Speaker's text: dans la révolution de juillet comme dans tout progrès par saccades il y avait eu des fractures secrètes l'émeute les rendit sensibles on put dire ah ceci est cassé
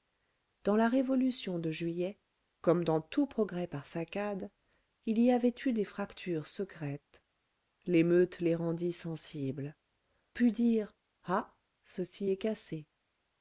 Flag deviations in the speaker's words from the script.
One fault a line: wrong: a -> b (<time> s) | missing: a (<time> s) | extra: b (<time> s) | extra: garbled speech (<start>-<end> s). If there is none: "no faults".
missing: on (9.8 s)